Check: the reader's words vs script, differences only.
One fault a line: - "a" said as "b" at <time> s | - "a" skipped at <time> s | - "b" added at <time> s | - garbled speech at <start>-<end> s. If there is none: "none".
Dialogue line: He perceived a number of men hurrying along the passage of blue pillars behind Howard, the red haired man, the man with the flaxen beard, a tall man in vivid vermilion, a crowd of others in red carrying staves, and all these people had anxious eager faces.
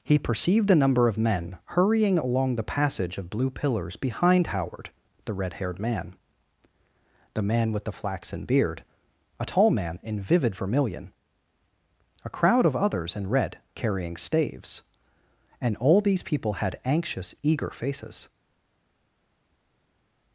none